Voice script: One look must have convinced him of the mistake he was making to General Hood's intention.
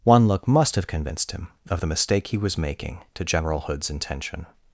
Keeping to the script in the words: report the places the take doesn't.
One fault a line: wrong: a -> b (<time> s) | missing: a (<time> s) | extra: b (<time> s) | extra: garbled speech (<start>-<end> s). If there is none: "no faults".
no faults